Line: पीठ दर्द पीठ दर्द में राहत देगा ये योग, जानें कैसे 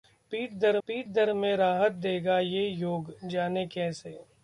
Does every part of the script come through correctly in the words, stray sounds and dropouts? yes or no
yes